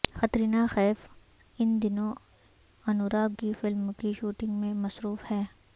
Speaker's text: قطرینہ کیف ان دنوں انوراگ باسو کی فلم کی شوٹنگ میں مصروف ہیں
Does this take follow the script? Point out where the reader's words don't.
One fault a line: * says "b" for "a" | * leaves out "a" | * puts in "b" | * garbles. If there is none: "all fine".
* leaves out "باسو"